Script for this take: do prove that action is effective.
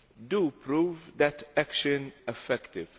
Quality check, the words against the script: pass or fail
fail